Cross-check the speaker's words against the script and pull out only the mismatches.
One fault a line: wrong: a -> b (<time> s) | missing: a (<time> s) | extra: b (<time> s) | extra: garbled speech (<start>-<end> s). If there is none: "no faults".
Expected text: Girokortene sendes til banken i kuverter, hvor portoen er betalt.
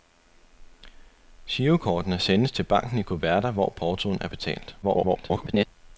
extra: garbled speech (4.8-5.7 s)